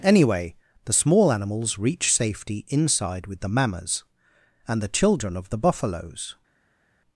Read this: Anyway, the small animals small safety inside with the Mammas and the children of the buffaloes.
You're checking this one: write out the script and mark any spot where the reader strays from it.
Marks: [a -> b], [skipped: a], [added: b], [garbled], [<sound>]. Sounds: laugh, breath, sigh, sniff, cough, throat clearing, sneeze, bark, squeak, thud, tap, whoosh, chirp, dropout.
Anyway, the small animals [small -> reach] safety inside with the Mammas and the children of the buffaloes.